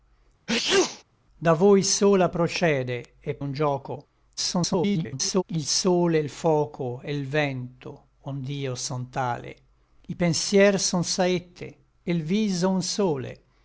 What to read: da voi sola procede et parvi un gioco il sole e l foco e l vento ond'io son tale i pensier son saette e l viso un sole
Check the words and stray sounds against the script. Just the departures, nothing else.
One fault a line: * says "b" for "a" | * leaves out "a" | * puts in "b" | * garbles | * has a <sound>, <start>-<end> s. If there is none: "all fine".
* has a sneeze, 0.5-1.0 s
* leaves out "parvi"
* garbles